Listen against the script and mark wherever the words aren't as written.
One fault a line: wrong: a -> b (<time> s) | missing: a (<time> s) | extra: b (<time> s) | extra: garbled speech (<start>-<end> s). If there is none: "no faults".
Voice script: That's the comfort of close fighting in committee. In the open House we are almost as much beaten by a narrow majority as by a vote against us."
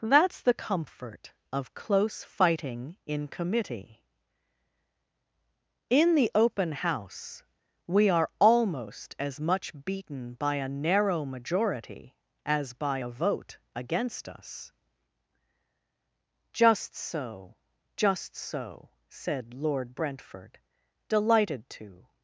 extra: Just so just so said Lord Brentford delighted to (16.5 s)